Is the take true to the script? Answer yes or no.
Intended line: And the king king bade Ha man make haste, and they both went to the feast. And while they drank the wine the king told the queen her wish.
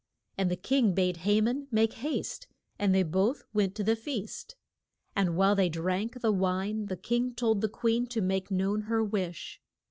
no